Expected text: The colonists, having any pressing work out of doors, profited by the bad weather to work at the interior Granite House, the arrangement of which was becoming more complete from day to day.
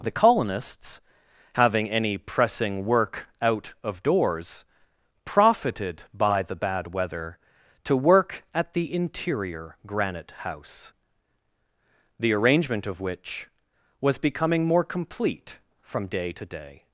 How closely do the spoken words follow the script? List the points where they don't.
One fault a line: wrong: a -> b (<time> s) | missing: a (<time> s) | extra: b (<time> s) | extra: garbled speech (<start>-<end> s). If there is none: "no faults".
no faults